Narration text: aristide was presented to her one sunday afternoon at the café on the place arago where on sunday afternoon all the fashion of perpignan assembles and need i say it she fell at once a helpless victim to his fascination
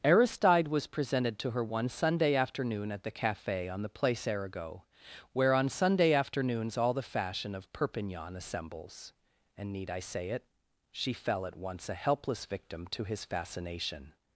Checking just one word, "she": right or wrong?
right